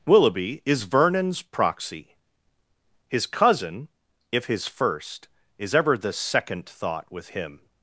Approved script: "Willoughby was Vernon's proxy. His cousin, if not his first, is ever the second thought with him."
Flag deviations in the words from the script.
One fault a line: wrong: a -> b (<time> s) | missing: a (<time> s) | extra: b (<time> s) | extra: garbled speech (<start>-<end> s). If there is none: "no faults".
wrong: was -> is (0.7 s)
missing: not (4.5 s)